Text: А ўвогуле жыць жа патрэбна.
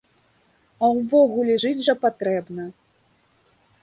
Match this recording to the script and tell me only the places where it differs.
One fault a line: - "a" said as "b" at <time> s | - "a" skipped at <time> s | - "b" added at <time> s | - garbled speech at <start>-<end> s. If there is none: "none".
none